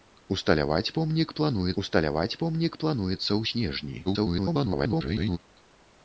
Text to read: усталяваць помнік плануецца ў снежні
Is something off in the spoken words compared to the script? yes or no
yes